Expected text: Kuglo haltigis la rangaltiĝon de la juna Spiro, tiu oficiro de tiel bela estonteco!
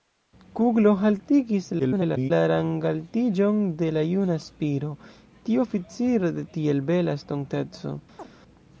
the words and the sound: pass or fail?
fail